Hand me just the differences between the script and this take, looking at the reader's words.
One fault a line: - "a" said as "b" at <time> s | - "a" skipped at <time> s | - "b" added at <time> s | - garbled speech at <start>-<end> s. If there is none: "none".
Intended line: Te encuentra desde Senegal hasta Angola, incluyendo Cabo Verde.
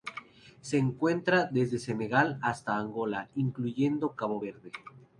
- "Te" said as "Se" at 0.6 s